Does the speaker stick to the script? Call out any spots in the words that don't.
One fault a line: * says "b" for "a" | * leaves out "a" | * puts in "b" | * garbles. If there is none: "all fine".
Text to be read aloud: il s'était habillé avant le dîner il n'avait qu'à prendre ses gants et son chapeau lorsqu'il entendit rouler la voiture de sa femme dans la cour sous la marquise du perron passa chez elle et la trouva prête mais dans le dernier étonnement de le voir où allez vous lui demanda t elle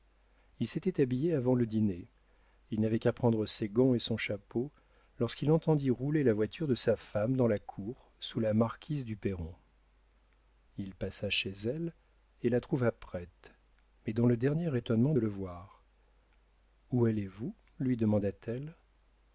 * puts in "il"